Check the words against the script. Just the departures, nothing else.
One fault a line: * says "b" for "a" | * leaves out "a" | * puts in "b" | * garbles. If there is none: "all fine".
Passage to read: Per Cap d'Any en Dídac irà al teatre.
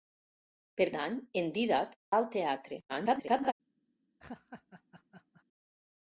* leaves out "Cap"
* leaves out "irà"
* garbles